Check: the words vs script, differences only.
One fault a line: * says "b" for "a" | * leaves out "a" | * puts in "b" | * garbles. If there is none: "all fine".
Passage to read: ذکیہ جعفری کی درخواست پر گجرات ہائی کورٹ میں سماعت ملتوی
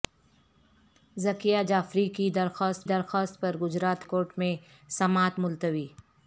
* puts in "درخواست"
* leaves out "ہائی"